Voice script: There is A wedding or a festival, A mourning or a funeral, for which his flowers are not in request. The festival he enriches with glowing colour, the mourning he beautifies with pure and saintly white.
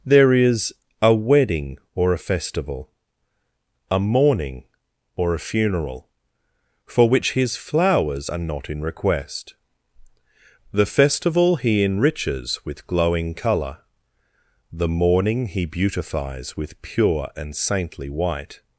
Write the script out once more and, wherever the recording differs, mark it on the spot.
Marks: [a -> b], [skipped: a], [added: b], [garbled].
There is A wedding or a festival, A mourning or a funeral, for which his flowers are not in request. The festival he enriches with glowing colour, the mourning he beautifies with pure and saintly white.